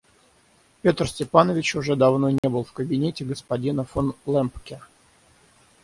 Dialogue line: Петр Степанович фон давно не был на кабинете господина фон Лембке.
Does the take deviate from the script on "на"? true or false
true